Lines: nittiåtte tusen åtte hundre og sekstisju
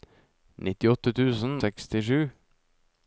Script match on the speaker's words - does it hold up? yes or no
no